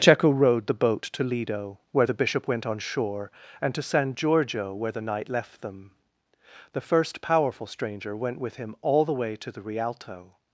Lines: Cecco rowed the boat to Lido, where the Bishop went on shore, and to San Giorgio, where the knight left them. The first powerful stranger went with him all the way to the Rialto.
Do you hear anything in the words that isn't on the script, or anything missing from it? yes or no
no